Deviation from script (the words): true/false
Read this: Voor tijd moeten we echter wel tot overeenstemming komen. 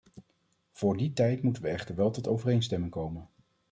true